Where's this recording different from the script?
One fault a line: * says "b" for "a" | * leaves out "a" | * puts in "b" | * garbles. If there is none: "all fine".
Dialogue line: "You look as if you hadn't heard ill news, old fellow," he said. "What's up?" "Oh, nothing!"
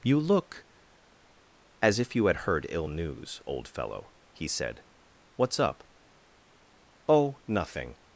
* says "had" for "hadn't"